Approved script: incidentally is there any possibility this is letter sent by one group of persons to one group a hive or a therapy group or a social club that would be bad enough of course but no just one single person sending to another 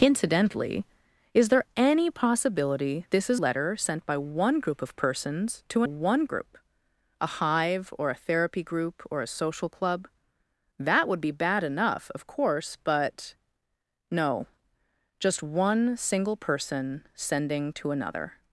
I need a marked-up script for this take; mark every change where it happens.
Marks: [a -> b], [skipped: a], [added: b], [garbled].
incidentally is there any possibility this is letter sent by one group of persons to one group a hive or a therapy group or a social club that would be bad enough of course but no just one single person sending to another